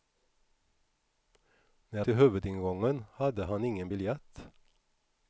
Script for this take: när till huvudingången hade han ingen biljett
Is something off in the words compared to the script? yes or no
no